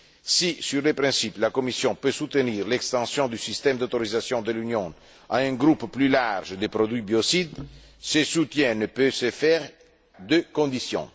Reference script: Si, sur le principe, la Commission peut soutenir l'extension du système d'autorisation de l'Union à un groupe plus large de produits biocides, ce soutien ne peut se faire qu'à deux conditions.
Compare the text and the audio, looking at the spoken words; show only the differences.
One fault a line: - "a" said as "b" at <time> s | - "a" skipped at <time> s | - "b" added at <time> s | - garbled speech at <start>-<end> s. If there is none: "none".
- "qu'à" skipped at 9.7 s